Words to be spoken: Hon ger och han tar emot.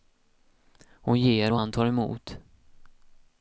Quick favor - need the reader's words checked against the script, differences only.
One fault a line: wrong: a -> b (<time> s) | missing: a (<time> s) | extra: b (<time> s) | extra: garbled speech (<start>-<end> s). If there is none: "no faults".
no faults